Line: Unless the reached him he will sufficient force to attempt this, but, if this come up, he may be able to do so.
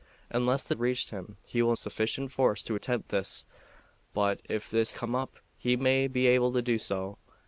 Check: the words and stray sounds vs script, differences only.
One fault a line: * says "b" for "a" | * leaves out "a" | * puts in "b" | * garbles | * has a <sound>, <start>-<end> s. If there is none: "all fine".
all fine